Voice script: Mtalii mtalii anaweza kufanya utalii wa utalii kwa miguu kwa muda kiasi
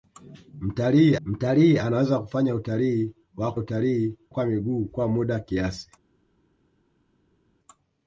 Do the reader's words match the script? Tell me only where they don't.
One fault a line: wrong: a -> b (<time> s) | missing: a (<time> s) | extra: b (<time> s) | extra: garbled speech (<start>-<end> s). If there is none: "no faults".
no faults